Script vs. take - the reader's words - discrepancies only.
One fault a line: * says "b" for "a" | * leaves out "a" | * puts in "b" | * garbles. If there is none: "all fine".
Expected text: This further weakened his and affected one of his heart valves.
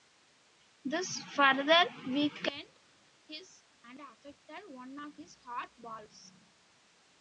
all fine